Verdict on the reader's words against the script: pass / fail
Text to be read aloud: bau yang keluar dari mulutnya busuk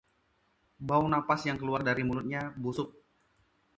fail